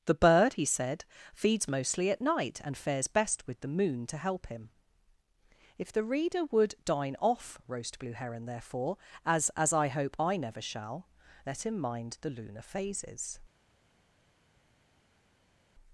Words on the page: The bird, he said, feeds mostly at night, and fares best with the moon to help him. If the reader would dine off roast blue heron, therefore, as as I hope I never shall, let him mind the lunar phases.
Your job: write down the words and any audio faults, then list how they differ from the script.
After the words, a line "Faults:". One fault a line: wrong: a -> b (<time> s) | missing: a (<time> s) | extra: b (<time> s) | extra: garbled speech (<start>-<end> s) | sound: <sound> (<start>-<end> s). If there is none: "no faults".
The bird, he said, feeds mostly at night, and fares best with the moon to help him. If the reader would dine off roast blue heron, therefore, as as I hope I never shall, let him mind the lunar phases.
Faults:
no faults